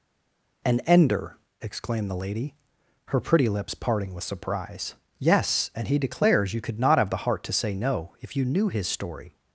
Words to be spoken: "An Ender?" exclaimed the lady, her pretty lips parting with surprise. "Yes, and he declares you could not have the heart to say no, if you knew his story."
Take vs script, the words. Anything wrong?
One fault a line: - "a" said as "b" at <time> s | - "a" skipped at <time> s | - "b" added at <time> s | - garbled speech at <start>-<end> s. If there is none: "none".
none